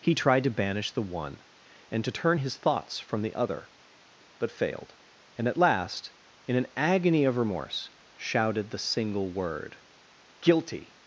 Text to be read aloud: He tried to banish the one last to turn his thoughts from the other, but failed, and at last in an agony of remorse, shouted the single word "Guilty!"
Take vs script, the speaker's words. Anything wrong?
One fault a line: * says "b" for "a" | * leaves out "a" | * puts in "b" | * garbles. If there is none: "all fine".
* says "and" for "last"